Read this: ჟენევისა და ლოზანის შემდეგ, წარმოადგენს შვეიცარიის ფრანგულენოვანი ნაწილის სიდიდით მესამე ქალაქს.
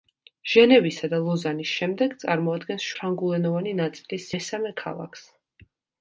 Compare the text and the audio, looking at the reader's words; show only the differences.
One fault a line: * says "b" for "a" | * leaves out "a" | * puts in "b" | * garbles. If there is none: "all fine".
* leaves out "შვეიცარიის"
* leaves out "სიდიდით"